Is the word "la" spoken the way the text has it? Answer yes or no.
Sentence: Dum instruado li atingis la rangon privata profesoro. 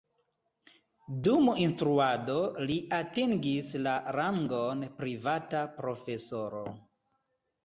yes